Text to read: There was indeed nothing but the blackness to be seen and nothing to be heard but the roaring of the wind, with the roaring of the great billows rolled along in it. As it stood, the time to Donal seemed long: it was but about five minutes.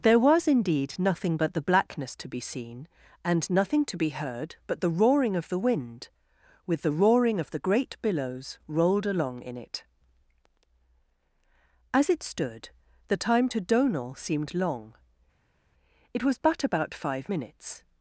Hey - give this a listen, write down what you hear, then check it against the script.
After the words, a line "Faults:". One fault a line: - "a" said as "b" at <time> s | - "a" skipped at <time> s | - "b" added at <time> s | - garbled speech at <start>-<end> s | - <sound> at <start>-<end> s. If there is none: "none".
There was indeed nothing but the blackness to be seen and nothing to be heard but the roaring of the wind, with the roaring of the great billows rolled along in it. As it stood, the time to Donal seemed long: it was but about five minutes.
Faults:
none